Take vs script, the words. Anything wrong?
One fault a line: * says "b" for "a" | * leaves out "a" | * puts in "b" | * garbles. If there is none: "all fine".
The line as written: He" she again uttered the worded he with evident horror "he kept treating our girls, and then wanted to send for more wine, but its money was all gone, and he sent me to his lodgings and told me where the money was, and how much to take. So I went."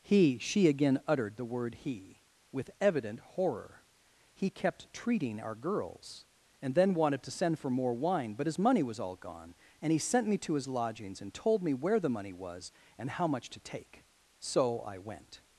* says "word" for "worded"
* says "his" for "its"